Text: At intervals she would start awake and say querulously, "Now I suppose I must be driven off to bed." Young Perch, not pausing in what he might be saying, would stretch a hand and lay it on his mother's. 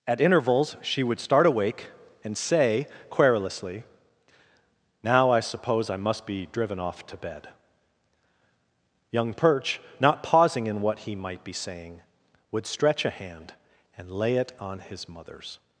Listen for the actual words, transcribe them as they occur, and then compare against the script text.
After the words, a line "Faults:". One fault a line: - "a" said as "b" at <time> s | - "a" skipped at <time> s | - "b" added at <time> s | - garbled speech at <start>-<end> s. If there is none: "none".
At intervals she would start awake and say querulously, "Now I suppose I must be driven off to bed." Young Perch, not pausing in what he might be saying, would stretch a hand and lay it on his mother's.
Faults:
none